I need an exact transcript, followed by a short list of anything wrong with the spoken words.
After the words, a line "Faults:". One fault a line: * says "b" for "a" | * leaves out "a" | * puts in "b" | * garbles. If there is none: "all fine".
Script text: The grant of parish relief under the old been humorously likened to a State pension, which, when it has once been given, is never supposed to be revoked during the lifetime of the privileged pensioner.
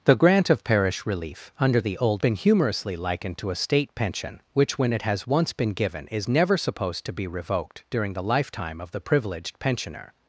The grant of parish relief under the old been humorously likened to a State pension, which, when it has once been given, is never supposed to be revoked during the lifetime of the privileged pensioner.
Faults:
all fine